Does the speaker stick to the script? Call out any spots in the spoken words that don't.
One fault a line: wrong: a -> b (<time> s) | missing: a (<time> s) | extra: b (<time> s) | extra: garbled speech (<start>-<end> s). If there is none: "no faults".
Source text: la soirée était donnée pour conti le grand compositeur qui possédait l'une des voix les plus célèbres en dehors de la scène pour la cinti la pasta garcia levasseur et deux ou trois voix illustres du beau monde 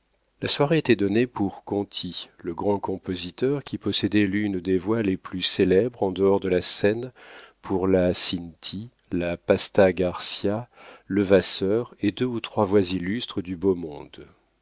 no faults